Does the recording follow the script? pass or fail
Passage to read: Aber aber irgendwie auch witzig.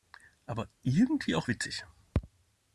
fail